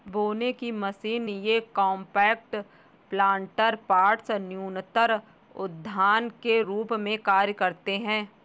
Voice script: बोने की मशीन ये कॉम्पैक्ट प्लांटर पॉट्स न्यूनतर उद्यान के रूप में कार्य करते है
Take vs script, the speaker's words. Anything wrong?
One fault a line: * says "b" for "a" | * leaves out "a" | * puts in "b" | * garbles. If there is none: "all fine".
all fine